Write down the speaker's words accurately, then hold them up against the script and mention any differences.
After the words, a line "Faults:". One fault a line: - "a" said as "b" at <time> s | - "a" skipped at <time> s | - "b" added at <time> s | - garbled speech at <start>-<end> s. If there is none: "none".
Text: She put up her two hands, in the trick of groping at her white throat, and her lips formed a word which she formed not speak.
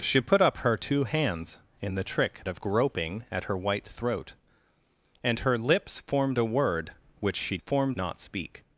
She put up her two hands, in the trick of groping at her white throat, and her lips formed a word which she formed not speak.
Faults:
none